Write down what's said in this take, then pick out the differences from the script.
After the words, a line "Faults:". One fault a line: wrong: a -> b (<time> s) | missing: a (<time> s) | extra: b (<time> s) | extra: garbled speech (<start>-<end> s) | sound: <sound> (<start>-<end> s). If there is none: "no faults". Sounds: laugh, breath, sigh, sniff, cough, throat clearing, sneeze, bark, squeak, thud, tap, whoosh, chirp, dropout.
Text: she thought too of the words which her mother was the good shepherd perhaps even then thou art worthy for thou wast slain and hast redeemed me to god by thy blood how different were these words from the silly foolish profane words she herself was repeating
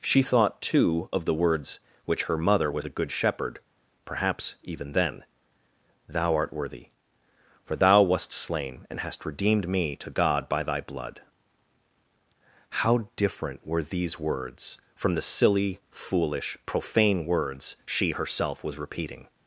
she thought too of the words which her mother was the good shepherd perhaps even then thou art worthy for thou wast slain and hast redeemed me to god by thy blood how different were these words from the silly foolish profane words she herself was repeating
Faults:
no faults